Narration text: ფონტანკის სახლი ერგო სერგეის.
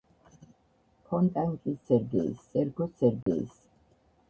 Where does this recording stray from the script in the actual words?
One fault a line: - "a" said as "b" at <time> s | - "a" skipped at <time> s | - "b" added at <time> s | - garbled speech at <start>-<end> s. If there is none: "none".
- "სახლი" said as "სერგეის" at 1.9 s